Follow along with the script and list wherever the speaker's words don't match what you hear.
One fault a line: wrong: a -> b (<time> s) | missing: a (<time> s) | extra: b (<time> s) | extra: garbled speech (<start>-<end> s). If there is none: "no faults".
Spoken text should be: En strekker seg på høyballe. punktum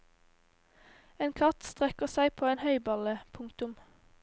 extra: katt (1.4 s)
extra: en (2.5 s)